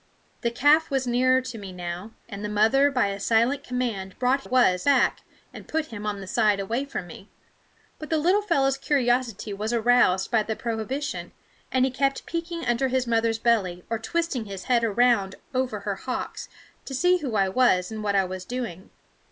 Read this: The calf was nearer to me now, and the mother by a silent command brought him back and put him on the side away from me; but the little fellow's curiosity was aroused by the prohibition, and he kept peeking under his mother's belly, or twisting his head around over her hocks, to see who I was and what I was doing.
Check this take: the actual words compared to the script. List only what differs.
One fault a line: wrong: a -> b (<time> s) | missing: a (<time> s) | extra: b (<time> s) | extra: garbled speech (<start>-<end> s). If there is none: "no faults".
wrong: him -> was (4.4 s)